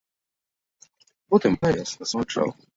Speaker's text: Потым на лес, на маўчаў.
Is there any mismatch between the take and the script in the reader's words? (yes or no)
no